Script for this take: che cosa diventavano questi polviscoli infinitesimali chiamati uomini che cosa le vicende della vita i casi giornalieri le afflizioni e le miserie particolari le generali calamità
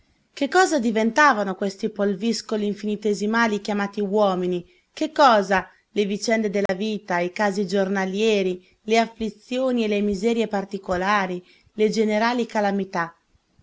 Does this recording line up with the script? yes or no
yes